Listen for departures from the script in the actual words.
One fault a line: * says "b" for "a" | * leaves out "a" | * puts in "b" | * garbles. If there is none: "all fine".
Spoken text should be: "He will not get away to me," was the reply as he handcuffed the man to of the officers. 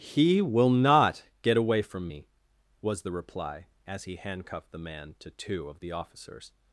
* says "from" for "to"
* puts in "two"